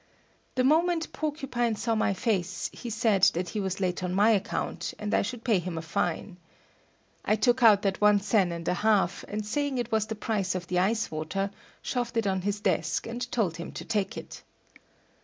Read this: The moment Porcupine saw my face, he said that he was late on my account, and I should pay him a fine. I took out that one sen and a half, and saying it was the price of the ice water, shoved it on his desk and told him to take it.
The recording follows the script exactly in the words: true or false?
true